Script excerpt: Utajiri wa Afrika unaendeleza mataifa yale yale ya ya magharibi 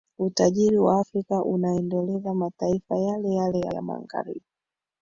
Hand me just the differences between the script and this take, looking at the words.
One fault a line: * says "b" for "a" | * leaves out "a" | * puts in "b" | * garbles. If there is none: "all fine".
all fine